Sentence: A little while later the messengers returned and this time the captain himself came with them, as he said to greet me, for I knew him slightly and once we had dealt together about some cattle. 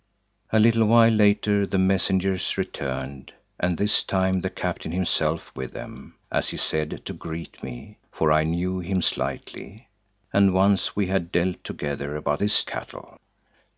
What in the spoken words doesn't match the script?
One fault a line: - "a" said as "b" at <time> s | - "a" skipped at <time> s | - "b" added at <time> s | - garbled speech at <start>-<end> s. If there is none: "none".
- "came" skipped at 5.5 s
- "some" said as "this" at 12.4 s